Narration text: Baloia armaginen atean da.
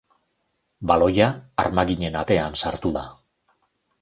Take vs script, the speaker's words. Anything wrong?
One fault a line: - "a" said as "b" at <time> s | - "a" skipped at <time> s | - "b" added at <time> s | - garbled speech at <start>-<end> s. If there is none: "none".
- "sartu" added at 2.6 s